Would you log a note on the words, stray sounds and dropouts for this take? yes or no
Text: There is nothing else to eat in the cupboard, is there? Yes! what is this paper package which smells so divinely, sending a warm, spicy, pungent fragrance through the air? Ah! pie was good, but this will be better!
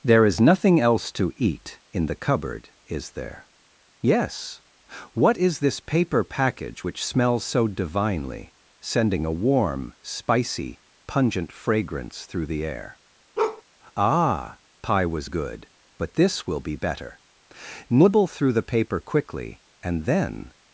yes